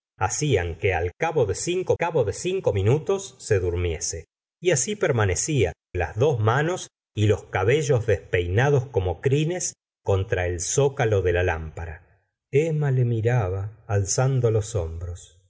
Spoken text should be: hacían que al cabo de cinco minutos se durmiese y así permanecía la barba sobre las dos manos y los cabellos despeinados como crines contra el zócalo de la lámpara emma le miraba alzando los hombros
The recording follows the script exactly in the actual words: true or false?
false